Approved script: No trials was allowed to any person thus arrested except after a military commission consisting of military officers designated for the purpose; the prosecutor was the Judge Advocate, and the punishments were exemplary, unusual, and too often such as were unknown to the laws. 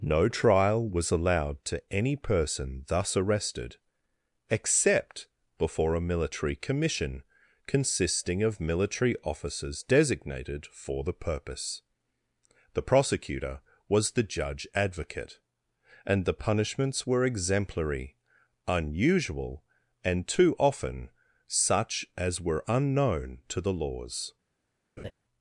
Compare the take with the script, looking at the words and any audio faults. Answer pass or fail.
fail